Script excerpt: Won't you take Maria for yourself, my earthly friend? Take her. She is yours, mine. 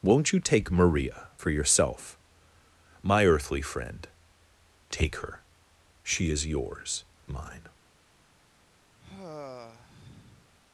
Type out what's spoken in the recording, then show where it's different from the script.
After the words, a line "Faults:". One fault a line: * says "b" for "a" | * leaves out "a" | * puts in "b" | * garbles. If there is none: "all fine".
Won't you take Maria for yourself, my earthly friend? Take her. She is yours, mine.
Faults:
all fine